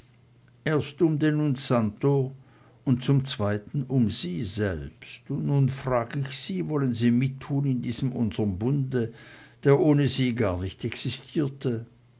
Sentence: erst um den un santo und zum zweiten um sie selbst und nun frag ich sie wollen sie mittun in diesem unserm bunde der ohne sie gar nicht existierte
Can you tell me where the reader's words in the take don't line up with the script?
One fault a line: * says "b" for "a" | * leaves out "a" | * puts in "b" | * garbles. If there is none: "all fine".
all fine